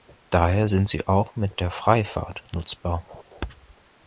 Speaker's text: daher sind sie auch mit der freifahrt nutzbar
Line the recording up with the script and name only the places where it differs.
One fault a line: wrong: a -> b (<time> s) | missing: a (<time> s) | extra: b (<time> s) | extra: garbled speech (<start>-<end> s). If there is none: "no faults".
no faults